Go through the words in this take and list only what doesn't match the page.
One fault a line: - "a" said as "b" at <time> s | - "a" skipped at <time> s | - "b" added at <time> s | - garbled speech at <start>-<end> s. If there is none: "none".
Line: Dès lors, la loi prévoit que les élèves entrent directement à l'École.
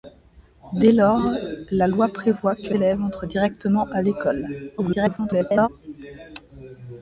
- "les" skipped at 2.7 s
- garbled speech at 4.8-5.7 s